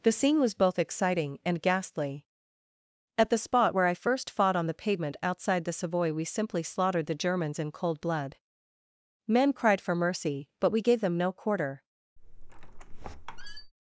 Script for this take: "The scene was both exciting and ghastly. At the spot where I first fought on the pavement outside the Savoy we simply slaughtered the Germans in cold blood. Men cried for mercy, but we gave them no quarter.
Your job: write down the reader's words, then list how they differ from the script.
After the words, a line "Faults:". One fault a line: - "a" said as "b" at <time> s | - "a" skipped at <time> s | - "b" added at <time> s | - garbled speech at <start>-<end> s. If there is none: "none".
"The scene was both exciting and ghastly. At the spot where I first fought on the pavement outside the Savoy we simply slaughtered the Germans in cold blood. Men cried for mercy, but we gave them no quarter.
Faults:
none